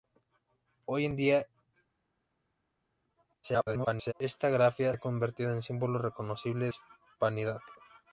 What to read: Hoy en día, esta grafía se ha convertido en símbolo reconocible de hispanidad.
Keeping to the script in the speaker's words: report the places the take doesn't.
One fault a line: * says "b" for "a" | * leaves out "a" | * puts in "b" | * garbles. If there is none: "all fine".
* garbles
* leaves out "se"
* leaves out "de"